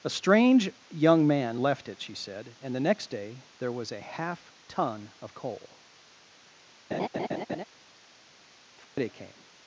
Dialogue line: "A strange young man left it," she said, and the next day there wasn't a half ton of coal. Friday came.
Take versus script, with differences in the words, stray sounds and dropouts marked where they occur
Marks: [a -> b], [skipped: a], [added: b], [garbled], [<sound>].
"A strange young man left it," she said, and the next day there [wasn't -> was] a half ton of coal. [laugh] Friday [dropout] came.